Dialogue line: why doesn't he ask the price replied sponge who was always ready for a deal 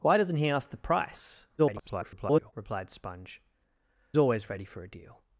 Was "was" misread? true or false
true